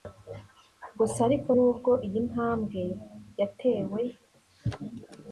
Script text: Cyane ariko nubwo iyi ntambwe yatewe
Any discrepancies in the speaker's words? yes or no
yes